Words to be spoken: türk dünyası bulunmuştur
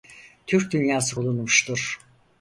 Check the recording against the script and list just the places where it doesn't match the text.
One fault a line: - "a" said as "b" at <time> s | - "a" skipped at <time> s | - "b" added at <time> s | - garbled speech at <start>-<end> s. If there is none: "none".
none